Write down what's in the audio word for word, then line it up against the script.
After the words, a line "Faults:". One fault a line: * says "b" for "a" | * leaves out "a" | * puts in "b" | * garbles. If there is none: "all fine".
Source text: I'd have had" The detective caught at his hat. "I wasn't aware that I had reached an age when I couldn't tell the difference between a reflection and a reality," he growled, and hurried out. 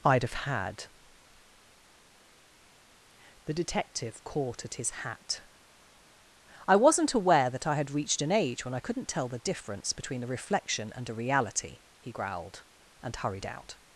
I'd have had" The detective caught at his hat. "I wasn't aware that I had reached an age when I couldn't tell the difference between a reflection and a reality," he growled, and hurried out.
Faults:
all fine